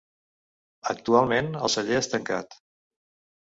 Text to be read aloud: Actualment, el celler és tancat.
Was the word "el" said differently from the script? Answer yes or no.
no